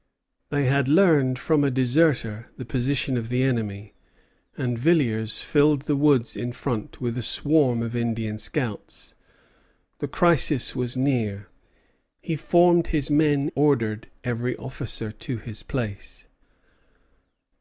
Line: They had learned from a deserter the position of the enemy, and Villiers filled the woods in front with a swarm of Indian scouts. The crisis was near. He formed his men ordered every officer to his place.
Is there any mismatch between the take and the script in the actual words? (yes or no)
no